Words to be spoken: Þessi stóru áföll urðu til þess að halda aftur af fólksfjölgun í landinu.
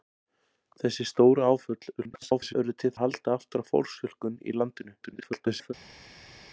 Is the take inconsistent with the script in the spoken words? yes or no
yes